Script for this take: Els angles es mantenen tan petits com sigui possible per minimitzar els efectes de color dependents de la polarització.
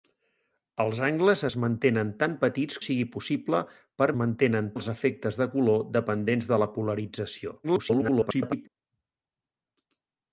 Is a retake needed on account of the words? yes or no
yes